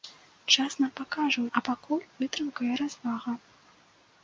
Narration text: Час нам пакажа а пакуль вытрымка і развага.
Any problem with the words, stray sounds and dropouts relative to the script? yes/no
no